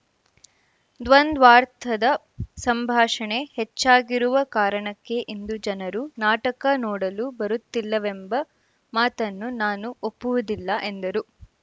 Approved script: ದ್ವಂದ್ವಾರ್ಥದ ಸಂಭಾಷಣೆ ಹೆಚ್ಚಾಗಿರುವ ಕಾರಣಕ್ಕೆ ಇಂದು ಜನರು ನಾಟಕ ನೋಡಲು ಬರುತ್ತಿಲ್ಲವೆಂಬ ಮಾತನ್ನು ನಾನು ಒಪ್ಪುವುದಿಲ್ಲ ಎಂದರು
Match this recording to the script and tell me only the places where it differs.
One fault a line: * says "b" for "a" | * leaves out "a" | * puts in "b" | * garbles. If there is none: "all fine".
all fine